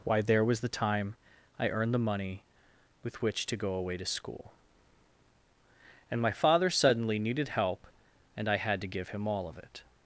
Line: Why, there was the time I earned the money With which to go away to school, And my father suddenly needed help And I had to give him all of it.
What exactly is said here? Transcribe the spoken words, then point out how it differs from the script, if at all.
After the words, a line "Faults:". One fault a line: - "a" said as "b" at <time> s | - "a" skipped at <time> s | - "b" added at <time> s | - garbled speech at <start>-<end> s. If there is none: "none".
Why, there was the time I earned the money With which to go away to school, And my father suddenly needed help And I had to give him all of it.
Faults:
none